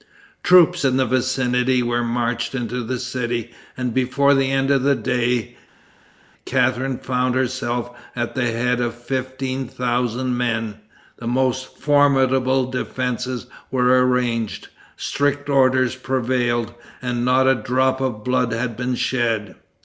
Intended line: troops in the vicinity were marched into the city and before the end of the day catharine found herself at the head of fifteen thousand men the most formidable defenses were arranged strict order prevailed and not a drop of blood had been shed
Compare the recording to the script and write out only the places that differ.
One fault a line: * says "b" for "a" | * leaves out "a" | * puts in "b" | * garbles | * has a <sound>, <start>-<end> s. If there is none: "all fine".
all fine